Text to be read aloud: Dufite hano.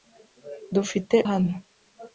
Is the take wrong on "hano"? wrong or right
right